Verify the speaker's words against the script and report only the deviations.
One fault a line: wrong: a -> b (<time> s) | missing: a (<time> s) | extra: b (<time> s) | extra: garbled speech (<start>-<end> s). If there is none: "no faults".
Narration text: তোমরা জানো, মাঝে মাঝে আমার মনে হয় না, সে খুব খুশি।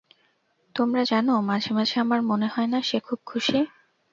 no faults